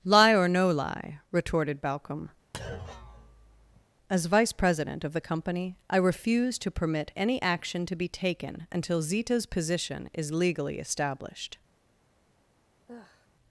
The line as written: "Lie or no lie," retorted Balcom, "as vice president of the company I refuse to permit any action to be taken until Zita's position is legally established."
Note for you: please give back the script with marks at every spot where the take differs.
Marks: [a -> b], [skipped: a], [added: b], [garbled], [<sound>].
"Lie or no lie," retorted Balcom, [thud] "as vice president of the company I refuse to permit any action to be taken until Zita's position is legally established." [sigh]